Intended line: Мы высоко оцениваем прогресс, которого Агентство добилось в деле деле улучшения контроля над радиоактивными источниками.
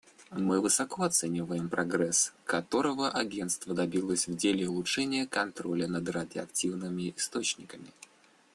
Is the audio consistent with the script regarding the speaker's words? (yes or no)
no